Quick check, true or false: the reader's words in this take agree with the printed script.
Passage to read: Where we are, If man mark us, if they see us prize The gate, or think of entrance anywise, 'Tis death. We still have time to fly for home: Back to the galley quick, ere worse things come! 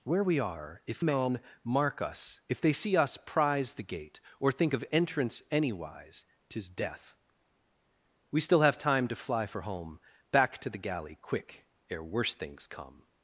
true